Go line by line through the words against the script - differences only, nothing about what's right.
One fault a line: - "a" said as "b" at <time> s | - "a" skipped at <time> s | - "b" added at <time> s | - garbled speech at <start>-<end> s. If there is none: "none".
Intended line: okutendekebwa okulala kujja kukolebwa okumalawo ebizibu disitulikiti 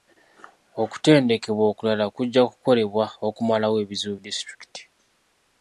none